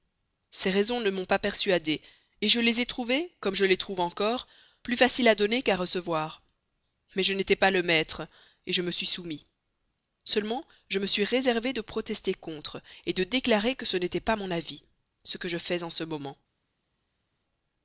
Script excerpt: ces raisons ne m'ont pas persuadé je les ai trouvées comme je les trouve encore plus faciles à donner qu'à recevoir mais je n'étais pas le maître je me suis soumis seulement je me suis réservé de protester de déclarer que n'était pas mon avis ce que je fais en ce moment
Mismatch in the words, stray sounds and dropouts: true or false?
true